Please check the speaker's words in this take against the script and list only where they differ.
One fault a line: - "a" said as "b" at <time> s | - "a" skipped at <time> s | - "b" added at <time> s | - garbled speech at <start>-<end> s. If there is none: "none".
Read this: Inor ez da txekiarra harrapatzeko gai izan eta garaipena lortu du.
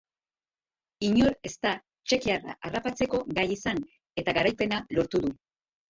none